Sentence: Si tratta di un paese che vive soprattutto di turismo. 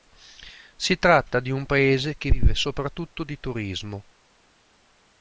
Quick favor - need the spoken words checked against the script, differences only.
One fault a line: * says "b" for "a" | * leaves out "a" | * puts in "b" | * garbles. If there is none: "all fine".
all fine